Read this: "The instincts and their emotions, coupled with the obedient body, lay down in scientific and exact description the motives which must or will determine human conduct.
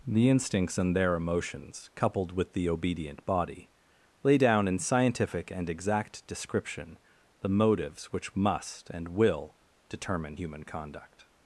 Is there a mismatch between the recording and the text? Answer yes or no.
yes